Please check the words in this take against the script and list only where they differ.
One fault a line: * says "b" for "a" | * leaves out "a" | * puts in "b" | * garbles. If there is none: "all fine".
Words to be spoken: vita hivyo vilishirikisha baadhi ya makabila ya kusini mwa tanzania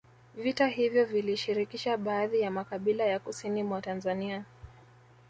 all fine